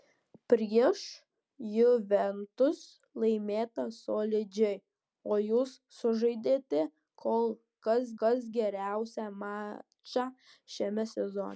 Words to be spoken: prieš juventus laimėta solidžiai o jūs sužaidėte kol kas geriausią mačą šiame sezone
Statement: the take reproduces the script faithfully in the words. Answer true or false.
false